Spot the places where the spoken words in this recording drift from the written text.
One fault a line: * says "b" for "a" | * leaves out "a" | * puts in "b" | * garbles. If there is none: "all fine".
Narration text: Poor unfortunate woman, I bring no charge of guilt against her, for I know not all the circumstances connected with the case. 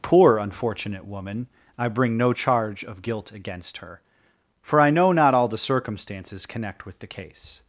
* says "connect" for "connected"